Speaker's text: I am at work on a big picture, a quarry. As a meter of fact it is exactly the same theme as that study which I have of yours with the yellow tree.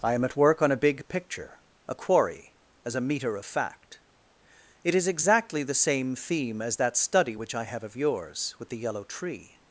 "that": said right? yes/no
yes